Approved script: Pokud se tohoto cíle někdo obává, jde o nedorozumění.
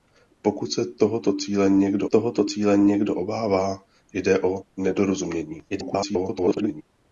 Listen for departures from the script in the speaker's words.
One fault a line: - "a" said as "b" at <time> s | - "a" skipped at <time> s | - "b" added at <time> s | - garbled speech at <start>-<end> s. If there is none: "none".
- "tohoto cíle někdo" added at 2.1 s
- garbled speech at 5.7-6.8 s